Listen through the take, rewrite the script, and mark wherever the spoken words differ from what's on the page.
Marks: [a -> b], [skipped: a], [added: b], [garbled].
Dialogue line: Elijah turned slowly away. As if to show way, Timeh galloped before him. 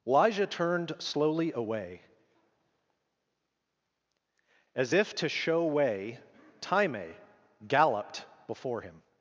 Elijah turned slowly away. As if to show way, Timeh galloped before him.